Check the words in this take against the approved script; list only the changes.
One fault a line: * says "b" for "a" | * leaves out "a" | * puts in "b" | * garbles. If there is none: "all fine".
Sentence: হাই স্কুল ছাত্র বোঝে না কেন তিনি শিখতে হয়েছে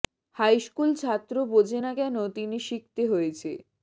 all fine